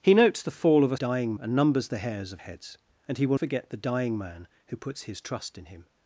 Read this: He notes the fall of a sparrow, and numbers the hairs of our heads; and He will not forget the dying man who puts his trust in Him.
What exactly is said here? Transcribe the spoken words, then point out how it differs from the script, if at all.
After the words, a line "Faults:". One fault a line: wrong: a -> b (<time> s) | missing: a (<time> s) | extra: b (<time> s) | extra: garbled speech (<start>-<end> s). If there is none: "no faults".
He notes the fall of a dying, and numbers the hairs of heads; and He will forget the dying man who puts his trust in Him.
Faults:
wrong: sparrow -> dying (0.9 s)
missing: our (2.4 s)
missing: not (3.4 s)